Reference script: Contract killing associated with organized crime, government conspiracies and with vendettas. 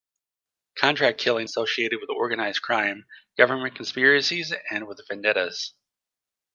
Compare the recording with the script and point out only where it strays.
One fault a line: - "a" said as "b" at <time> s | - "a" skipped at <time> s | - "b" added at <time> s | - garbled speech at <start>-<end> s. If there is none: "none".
none